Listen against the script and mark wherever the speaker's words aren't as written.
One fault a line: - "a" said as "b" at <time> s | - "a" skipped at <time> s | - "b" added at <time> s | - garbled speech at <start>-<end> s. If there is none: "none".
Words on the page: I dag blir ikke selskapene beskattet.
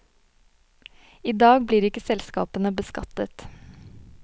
none